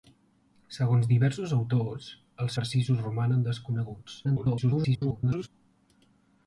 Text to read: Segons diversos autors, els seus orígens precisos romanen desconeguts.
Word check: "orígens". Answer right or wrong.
wrong